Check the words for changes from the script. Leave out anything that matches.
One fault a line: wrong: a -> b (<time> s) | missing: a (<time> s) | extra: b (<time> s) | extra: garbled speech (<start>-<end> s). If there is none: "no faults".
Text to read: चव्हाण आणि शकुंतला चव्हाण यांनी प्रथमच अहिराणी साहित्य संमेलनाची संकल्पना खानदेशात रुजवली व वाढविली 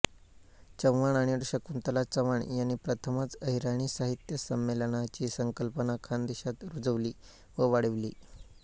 no faults